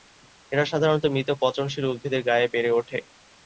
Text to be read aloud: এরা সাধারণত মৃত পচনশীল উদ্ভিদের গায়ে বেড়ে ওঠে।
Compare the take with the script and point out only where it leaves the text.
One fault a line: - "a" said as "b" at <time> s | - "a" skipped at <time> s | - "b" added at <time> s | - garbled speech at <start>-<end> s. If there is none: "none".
none